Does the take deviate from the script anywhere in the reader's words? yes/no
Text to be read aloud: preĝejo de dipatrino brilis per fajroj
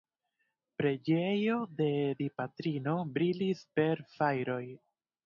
no